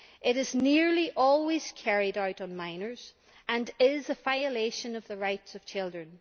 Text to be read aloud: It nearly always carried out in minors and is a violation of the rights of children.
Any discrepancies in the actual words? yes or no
yes